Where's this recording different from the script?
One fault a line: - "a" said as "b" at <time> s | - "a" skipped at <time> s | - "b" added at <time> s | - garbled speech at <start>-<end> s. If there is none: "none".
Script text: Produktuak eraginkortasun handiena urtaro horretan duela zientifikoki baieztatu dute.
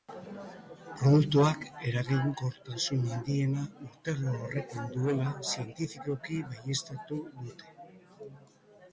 none